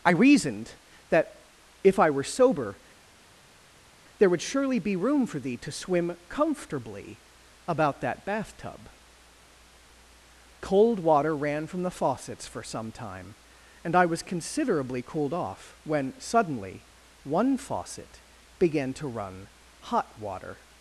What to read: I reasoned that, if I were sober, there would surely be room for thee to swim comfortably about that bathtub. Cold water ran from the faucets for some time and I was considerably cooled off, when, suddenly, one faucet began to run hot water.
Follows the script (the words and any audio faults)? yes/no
yes